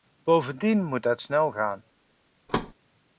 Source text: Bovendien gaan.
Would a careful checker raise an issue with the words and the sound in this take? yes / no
yes